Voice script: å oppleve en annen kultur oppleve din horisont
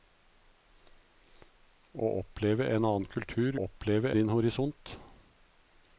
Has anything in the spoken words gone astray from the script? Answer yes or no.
no